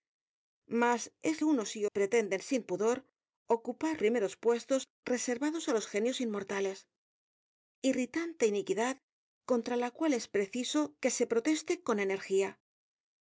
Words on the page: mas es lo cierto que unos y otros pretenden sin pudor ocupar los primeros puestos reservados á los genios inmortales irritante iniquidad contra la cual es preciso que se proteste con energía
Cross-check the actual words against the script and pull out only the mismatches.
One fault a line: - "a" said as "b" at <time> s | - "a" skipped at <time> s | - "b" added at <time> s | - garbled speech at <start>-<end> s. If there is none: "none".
- "lo cierto que" skipped at 1.4 s
- "otros" skipped at 1.9 s
- "los" skipped at 4.0 s